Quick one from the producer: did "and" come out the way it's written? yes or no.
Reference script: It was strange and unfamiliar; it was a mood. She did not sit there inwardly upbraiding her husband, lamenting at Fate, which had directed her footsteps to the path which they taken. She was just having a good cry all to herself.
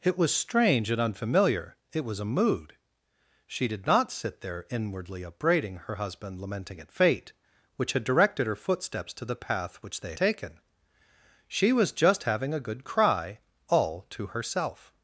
yes